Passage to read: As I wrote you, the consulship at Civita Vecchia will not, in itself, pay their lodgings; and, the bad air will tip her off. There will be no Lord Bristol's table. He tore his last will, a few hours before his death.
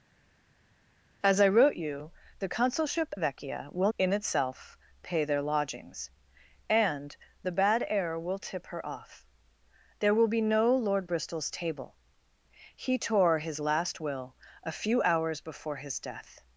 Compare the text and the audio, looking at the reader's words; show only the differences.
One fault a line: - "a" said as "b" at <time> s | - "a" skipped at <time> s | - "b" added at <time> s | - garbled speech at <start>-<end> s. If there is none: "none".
- "at Civita" skipped at 3.1 s
- "not" skipped at 3.9 s